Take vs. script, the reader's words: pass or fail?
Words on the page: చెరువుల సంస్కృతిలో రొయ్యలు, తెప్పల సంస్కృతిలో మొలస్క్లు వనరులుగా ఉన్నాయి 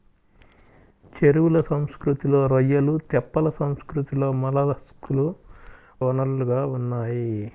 pass